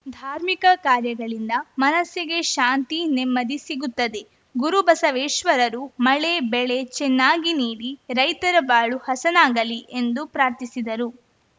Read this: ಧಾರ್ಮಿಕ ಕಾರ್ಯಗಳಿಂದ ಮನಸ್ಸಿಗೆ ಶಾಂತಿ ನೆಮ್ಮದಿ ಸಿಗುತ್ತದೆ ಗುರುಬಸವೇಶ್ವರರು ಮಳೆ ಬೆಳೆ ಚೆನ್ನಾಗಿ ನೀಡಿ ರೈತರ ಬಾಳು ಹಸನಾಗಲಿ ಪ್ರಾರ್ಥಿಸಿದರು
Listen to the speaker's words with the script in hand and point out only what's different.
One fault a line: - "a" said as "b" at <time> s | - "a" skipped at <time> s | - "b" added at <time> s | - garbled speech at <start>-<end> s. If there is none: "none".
- "ಎಂದು" added at 9.9 s